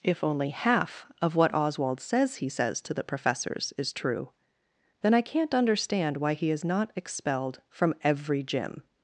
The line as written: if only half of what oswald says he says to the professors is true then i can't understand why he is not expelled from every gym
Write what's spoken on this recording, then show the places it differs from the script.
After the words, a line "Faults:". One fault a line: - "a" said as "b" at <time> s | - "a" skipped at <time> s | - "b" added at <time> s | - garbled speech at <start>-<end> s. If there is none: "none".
if only half of what oswald says he says to the professors is true then i can't understand why he is not expelled from every gym
Faults:
none